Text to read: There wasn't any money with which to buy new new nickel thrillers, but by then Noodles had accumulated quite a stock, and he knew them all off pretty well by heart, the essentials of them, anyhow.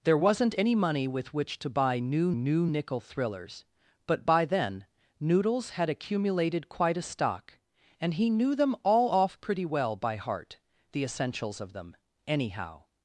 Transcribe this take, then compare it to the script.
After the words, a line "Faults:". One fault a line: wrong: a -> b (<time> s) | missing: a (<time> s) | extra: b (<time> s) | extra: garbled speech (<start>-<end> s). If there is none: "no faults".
There wasn't any money with which to buy new new nickel thrillers, but by then Noodles had accumulated quite a stock, and he knew them all off pretty well by heart, the essentials of them, anyhow.
Faults:
no faults